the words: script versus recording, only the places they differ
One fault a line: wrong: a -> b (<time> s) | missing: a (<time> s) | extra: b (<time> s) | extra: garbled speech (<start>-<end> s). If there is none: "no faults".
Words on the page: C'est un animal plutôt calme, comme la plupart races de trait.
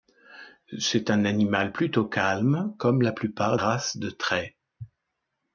no faults